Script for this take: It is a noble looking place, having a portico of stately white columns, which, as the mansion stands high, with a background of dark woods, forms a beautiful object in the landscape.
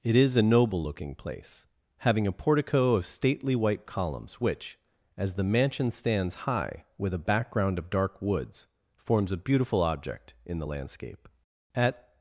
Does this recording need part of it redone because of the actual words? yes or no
yes